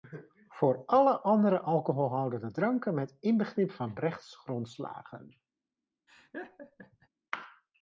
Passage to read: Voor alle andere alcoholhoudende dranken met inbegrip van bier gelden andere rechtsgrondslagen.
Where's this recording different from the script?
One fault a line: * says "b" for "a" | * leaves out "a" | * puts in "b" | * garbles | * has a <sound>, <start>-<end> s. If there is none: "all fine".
* leaves out "bier gelden andere"
* has a laugh, 6.1-7.1 s